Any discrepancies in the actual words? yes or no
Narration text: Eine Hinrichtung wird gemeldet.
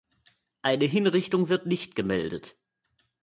yes